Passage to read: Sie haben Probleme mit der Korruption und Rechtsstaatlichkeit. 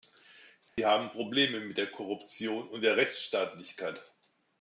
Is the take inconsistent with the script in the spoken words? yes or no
yes